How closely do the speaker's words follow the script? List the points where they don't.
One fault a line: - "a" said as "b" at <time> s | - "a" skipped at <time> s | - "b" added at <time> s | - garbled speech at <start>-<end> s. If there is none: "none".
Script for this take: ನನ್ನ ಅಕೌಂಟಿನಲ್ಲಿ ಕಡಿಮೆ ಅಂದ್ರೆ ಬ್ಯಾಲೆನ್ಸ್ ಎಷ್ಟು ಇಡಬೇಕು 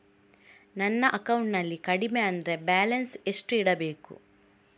none